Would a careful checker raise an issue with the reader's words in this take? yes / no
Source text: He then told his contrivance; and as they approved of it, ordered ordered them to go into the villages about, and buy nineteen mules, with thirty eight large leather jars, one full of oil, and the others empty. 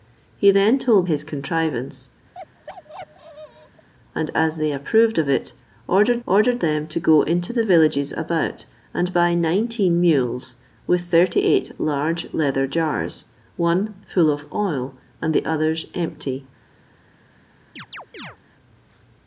no